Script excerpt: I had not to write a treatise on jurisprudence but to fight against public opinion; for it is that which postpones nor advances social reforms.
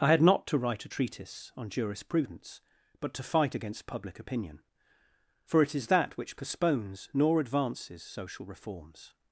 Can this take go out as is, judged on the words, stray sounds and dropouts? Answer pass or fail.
pass